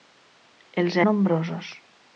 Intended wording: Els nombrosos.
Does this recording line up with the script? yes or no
yes